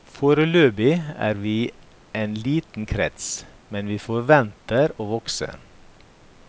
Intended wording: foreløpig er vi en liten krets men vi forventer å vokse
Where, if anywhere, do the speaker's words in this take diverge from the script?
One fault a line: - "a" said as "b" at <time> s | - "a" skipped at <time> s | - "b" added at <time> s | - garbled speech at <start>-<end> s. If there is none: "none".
none